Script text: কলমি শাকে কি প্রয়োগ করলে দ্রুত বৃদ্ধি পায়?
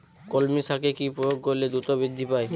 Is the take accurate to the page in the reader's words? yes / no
yes